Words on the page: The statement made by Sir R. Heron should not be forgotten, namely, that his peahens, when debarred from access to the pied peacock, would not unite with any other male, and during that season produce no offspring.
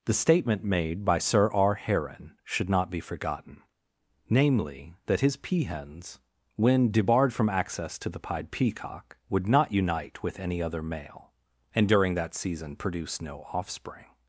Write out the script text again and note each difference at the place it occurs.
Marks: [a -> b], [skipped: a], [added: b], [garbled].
The statement made by Sir R. Heron should not be forgotten, namely, that his peahens, when debarred from access to the pied peacock, would not unite with any other male, and during that season produce no offspring.